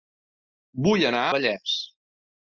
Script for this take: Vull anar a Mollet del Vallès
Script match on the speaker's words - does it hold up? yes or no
no